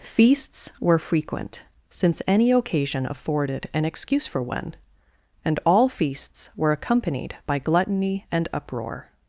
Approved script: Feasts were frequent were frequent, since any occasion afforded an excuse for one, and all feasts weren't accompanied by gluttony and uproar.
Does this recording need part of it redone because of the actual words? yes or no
yes